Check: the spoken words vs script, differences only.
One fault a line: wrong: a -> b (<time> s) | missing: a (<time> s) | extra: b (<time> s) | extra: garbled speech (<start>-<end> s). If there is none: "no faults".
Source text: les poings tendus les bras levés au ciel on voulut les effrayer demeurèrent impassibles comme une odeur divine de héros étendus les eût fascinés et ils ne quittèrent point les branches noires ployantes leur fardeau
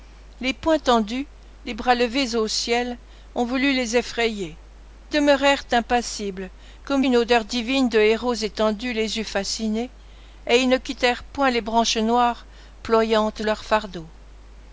no faults